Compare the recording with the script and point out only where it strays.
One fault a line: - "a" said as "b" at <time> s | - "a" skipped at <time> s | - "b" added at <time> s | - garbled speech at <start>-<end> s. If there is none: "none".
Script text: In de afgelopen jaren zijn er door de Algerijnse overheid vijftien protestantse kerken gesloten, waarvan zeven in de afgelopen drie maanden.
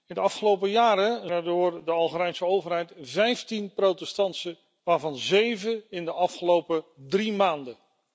- "zijn" skipped at 1.3 s
- "kerken gesloten" skipped at 4.6 s